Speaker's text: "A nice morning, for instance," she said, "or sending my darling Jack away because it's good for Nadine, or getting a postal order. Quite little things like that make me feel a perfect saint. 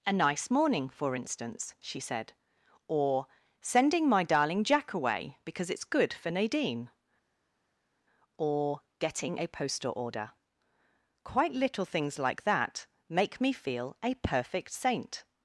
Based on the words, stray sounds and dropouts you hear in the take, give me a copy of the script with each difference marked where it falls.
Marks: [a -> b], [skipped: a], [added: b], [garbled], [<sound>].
"A nice morning, for instance," she said, "or sending my darling Jack away because it's good for Nadine, or getting a postal order. Quite little things like that make me feel a perfect saint.